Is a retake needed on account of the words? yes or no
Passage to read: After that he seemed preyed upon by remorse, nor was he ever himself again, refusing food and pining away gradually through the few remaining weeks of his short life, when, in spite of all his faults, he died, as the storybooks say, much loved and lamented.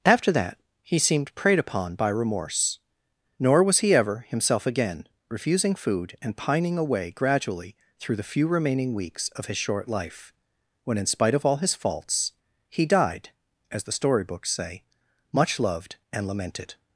no